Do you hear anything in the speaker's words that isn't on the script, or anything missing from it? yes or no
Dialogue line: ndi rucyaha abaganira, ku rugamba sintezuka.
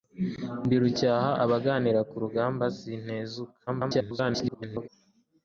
yes